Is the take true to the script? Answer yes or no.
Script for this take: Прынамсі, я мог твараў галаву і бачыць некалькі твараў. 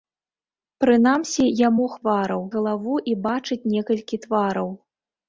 yes